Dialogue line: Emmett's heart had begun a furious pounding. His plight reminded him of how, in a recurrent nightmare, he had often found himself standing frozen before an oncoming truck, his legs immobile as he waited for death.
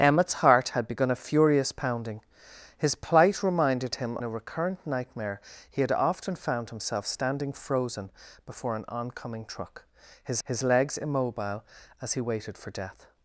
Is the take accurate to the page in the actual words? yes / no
no